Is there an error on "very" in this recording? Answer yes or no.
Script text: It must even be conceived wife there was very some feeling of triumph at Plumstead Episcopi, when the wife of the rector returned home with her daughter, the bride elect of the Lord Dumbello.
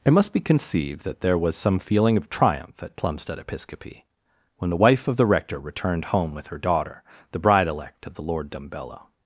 yes